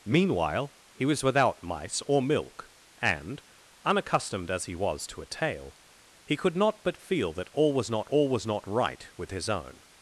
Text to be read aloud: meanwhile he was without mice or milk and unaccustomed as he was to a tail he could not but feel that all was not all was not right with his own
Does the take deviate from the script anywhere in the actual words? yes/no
no